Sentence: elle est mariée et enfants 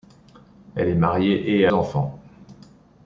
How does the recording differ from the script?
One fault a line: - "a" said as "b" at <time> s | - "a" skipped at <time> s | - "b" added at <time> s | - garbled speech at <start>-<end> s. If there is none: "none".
none